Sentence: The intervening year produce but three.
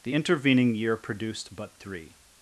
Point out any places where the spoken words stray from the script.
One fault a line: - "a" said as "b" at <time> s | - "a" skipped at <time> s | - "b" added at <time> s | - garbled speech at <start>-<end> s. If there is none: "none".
- "produce" said as "produced" at 1.0 s